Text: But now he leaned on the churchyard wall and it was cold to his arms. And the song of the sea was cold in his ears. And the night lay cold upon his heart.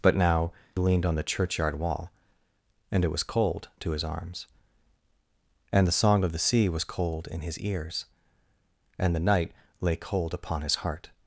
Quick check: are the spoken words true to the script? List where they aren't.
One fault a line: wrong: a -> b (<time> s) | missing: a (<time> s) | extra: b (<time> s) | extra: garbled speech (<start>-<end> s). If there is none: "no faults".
missing: he (0.5 s)